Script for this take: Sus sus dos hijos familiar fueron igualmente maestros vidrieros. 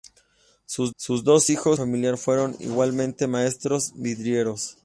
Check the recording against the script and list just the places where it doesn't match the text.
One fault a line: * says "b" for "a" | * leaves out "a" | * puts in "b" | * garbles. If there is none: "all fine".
all fine